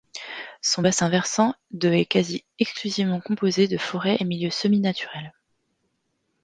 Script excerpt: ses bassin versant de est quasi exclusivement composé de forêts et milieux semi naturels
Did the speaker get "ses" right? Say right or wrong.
wrong